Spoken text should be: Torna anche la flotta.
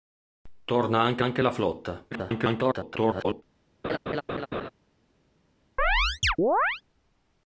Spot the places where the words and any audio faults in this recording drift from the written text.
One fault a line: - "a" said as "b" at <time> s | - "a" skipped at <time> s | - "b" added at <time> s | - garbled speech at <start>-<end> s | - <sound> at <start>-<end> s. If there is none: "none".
- "anche" added at 1.2 s
- garbled speech at 2.1-3.4 s
- laugh at 3.8-4.7 s
- chirp at 5.8-6.8 s